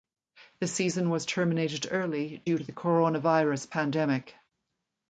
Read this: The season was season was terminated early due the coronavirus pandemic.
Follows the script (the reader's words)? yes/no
no